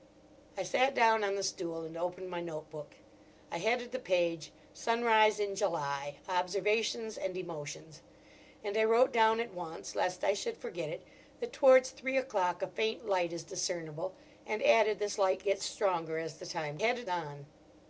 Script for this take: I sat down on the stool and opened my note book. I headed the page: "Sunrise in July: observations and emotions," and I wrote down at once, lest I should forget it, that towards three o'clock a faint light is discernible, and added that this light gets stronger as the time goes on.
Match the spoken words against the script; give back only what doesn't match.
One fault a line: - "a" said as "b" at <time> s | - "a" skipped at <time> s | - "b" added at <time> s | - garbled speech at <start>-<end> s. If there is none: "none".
- "that" skipped at 15.0 s
- "goes" said as "headed" at 16.8 s